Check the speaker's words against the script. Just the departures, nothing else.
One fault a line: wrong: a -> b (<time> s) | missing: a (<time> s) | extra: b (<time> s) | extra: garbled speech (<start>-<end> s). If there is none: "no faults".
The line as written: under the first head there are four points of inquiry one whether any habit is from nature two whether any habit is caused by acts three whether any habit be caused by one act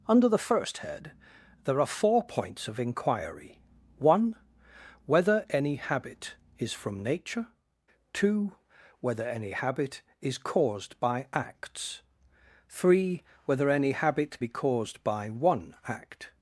no faults